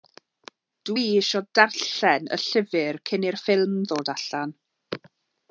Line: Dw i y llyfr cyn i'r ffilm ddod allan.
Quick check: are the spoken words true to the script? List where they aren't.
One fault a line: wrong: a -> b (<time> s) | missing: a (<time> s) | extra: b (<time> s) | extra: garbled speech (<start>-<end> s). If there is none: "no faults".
extra: isio darllen (1.2 s)